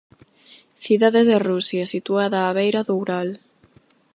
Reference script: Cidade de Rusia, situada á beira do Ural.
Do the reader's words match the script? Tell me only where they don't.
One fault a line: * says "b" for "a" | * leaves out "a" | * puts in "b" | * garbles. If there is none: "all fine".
all fine